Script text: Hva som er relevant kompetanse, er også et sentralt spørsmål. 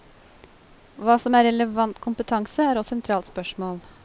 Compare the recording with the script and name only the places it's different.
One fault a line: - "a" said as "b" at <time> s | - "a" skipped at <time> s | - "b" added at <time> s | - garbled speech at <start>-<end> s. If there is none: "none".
- "også" skipped at 2.8 s